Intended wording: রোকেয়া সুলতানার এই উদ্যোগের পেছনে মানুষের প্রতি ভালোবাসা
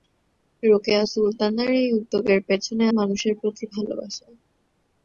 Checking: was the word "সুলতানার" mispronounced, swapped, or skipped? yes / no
no